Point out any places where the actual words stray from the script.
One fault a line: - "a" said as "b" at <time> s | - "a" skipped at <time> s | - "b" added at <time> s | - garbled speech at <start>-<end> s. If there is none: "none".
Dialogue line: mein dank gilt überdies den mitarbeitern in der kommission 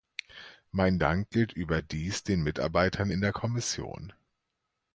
none